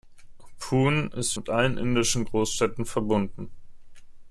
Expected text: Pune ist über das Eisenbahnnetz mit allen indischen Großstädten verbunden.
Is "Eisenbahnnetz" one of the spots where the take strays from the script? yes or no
yes